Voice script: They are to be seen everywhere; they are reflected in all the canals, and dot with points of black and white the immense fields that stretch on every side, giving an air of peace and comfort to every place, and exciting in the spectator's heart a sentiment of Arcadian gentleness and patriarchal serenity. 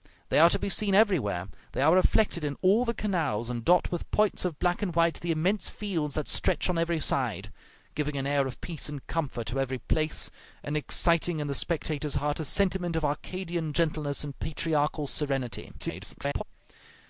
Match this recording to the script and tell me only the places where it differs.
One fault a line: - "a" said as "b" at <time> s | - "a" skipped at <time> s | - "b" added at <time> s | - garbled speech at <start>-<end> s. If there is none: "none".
- garbled speech at 15.8-16.4 s